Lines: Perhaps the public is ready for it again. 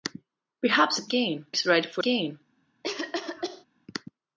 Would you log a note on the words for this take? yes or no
yes